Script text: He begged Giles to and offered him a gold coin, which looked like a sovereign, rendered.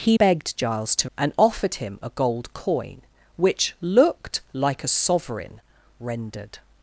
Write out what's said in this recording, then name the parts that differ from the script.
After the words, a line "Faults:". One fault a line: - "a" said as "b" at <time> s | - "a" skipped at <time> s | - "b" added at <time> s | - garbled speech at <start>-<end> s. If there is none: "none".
He begged Giles to and offered him a gold coin, which looked like a sovereign, rendered.
Faults:
none